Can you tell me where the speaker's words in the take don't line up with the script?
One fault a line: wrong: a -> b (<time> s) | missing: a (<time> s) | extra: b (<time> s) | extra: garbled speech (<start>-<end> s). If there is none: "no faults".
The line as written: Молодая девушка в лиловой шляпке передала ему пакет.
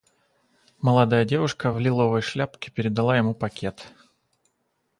no faults